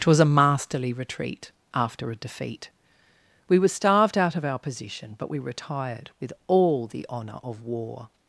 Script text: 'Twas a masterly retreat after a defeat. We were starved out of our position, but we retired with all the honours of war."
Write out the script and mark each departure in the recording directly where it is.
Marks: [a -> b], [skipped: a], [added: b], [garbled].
'Twas a masterly retreat after a defeat. We were starved out of our position, but we retired with all the [honours -> honour] of war."